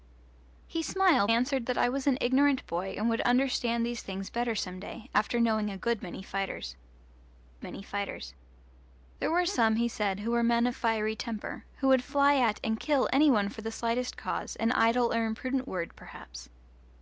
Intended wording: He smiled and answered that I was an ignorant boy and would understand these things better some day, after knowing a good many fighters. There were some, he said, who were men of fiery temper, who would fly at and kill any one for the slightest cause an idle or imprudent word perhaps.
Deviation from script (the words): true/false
true